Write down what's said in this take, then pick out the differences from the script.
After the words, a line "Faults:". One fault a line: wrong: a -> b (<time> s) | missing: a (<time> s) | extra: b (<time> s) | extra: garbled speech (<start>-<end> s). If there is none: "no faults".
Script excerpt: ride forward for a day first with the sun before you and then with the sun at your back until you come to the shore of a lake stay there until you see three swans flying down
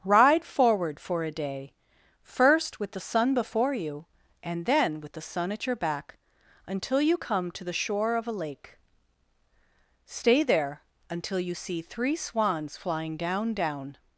ride forward for a day first with the sun before you and then with the sun at your back until you come to the shore of a lake stay there until you see three swans flying down down
Faults:
extra: down (13.5 s)